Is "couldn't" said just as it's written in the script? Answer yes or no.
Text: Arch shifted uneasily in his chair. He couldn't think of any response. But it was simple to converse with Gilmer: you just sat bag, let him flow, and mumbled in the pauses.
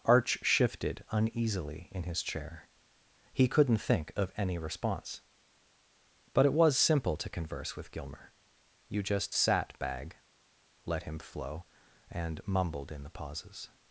yes